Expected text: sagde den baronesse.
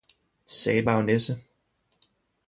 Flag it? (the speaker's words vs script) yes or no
no